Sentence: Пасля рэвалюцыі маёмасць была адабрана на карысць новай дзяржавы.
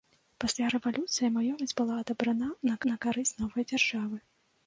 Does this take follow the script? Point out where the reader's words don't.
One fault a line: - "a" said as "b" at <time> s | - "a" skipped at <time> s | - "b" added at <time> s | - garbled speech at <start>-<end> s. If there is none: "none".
- "на" added at 2.9 s